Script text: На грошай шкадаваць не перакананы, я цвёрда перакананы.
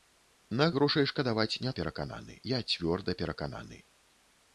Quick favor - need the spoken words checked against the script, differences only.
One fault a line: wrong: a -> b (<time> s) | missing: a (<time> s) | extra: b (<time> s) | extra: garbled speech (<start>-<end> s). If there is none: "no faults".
no faults